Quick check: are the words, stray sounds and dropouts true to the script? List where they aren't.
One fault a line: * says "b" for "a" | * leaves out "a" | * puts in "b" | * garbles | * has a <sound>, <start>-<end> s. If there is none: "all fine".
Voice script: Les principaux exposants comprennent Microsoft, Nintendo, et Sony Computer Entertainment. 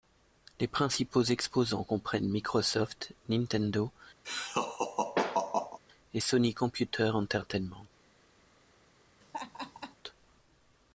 * has a laugh, 4.2-5.8 s
* has a laugh, 9.2-10.0 s